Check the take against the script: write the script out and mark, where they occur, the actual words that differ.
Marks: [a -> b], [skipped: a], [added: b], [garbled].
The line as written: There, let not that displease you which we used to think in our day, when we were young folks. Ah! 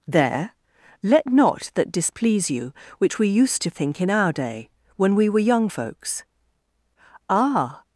There, let not that displease you which we used to think in our day, when we were young folks. Ah!